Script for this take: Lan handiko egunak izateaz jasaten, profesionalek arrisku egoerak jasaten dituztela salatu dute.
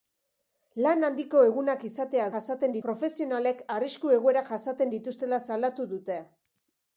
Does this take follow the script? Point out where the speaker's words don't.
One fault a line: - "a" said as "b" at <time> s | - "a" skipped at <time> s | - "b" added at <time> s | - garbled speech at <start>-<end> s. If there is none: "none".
none